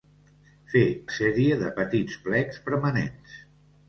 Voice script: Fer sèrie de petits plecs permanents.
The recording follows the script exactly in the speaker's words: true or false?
true